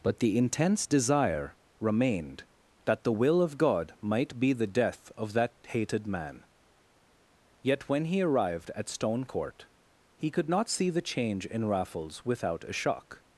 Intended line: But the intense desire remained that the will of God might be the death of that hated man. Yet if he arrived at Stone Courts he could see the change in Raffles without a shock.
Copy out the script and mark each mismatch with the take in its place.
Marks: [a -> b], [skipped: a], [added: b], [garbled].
But the intense desire remained that the will of God might be the death of that hated man. Yet [if -> when] he arrived at Stone [Courts -> Court] he could [added: not] see the change in Raffles without a shock.